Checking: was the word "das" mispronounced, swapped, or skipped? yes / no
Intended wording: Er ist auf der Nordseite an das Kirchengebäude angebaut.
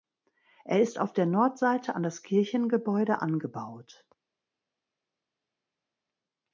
no